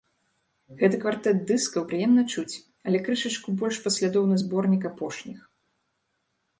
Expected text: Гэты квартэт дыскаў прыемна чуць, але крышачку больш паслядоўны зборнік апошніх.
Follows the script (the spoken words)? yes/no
yes